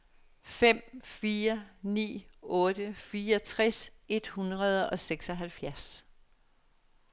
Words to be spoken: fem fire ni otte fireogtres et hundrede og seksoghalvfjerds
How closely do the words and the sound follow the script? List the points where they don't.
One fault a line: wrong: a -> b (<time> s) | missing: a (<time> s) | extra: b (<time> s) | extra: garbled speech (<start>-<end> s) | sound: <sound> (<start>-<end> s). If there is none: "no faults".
no faults